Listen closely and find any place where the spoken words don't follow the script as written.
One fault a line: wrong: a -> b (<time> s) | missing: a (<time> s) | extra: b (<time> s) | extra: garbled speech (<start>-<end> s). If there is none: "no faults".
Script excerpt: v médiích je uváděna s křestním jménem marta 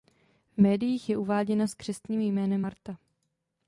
no faults